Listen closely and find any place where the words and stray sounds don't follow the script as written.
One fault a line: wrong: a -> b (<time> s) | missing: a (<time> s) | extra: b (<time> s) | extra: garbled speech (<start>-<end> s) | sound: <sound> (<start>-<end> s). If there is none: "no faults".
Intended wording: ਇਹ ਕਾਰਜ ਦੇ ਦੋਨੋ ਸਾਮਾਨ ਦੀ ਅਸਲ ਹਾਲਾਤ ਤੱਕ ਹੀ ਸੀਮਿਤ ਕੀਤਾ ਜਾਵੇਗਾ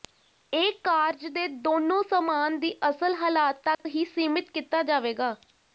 sound: dropout (3.7-3.8 s)